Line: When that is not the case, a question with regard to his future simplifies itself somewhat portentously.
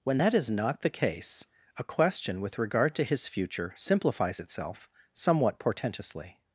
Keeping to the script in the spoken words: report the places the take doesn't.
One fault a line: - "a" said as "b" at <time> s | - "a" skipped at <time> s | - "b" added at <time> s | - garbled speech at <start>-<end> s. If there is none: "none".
none